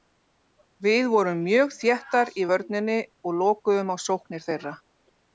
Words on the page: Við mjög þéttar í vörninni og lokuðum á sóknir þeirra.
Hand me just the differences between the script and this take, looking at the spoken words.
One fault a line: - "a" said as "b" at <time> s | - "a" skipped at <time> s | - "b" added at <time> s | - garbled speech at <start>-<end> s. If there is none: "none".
- "vorum" added at 1.1 s